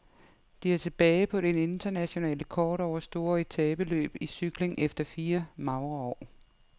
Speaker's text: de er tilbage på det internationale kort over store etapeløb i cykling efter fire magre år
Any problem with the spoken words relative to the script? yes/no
no